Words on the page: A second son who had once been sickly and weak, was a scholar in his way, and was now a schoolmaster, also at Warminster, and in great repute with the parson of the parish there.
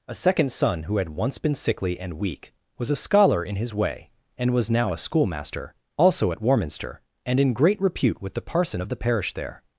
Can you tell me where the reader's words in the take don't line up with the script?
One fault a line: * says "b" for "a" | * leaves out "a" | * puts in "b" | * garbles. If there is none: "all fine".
all fine